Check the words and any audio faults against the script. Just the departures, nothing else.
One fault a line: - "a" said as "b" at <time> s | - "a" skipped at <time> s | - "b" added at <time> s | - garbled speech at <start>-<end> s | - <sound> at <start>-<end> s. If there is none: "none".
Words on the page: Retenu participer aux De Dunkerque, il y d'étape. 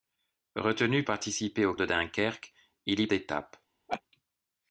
- laugh at 3.9-4.0 s